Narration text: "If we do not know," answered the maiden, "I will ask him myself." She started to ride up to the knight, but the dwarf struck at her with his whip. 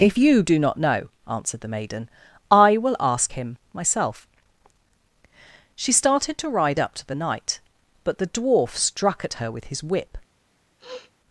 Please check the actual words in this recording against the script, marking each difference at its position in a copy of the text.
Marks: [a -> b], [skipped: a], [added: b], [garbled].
"If [we -> you] do not know," answered the maiden, "I will ask him myself." She started to ride up to the knight, but the dwarf struck at her with his whip.